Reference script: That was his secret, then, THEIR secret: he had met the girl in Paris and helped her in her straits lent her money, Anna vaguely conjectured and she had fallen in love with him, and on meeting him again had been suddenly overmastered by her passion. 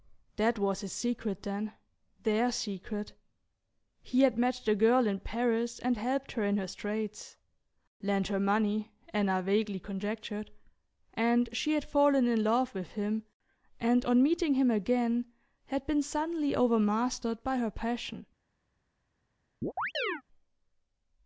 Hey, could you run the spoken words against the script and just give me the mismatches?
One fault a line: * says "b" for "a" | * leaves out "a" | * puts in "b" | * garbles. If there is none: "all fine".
all fine